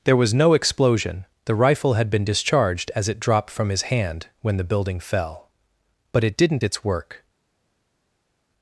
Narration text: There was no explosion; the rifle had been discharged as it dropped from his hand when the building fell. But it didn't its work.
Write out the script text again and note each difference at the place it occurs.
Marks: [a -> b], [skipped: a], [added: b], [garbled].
There was no explosion; the rifle had been discharged as it dropped from his hand when the building fell. But it didn't its work.